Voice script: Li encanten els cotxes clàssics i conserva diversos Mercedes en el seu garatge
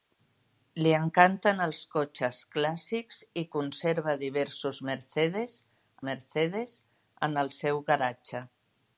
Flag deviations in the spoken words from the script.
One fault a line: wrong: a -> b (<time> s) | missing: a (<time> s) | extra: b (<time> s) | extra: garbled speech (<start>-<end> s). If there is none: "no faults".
extra: Mercedes (6.1 s)